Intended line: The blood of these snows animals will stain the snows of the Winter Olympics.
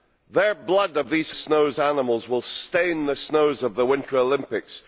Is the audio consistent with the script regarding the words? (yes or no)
yes